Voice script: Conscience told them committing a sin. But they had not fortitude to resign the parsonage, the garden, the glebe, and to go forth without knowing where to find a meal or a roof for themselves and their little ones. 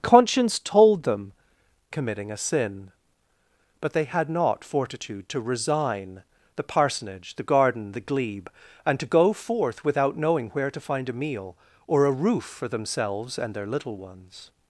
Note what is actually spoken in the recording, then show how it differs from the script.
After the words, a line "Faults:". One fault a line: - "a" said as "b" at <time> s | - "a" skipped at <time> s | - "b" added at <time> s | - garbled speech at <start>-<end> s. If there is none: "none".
Conscience told them committing a sin. But they had not fortitude to resign the parsonage, the garden, the glebe, and to go forth without knowing where to find a meal or a roof for themselves and their little ones.
Faults:
none